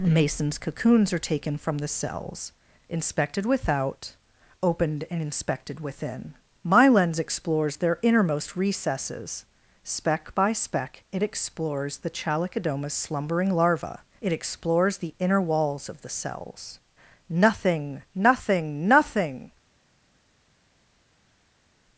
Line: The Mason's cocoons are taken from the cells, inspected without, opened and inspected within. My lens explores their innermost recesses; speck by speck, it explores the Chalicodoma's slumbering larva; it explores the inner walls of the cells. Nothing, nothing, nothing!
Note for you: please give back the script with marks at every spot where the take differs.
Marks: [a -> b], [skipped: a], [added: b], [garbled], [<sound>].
[skipped: The] Mason's cocoons are taken from the cells, inspected without, opened and inspected within. My lens explores their innermost recesses; speck by speck, it explores the Chalicodoma's slumbering larva; it explores the inner walls of the cells. Nothing, nothing, nothing!